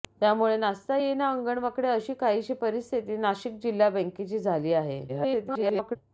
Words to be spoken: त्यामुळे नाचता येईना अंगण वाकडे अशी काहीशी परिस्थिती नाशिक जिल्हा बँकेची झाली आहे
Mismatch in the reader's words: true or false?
true